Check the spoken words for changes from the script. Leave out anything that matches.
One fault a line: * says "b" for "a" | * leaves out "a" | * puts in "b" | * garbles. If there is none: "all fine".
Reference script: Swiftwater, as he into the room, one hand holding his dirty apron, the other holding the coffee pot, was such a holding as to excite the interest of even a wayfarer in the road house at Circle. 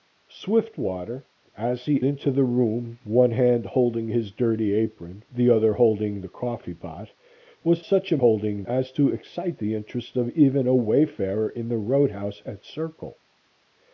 all fine